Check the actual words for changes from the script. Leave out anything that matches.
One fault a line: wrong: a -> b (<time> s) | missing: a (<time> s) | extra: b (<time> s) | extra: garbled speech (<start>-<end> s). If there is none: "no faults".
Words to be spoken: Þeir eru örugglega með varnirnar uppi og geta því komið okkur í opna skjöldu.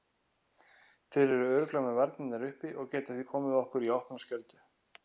no faults